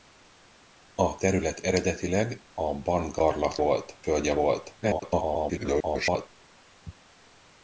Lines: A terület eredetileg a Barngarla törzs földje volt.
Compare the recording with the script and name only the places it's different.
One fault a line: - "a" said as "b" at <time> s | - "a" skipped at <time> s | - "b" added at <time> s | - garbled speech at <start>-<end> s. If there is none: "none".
- "törzs" said as "volt" at 3.6 s
- garbled speech at 4.8-6.3 s